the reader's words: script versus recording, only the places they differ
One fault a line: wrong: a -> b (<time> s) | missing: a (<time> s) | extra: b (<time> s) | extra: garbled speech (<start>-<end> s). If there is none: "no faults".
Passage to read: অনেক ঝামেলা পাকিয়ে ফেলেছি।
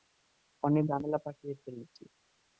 no faults